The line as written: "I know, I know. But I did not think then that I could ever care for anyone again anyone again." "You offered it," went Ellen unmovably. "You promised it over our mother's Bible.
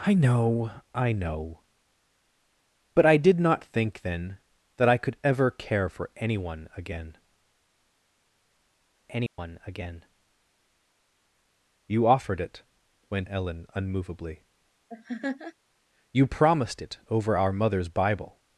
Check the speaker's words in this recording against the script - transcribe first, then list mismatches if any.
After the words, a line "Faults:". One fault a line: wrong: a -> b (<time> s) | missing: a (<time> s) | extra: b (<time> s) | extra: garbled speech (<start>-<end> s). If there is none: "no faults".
"I know, I know. But I did not think then that I could ever care for anyone again anyone again." "You offered it," went Ellen unmovably. "You promised it over our mother's Bible.
Faults:
no faults